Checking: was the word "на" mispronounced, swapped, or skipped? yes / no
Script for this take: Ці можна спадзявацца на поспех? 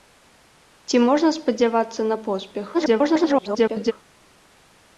no